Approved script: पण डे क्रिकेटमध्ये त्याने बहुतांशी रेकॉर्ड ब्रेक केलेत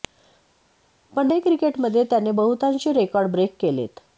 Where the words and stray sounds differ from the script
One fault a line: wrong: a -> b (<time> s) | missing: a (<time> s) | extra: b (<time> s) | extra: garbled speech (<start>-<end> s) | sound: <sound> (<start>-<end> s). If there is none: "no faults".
no faults